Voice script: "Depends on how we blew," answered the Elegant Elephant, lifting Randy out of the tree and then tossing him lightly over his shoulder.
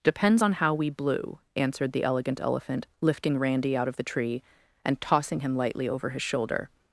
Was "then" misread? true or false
true